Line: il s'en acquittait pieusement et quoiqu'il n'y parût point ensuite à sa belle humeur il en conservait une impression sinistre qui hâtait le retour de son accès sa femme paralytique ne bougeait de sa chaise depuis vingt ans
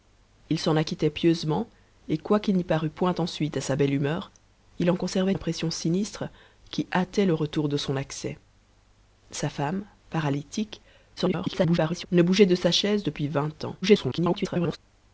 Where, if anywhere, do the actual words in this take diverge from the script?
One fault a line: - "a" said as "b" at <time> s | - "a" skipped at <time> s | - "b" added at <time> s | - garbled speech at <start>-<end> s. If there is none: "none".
- "une" skipped at 5.3 s
- garbled speech at 11.2-12.1 s
- garbled speech at 13.8-14.8 s